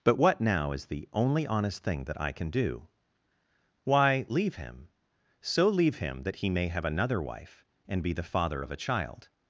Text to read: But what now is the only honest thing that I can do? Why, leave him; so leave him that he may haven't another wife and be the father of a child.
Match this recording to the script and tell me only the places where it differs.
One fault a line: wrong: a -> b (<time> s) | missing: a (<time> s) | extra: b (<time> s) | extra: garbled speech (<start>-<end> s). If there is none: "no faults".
wrong: haven't -> have (6.7 s)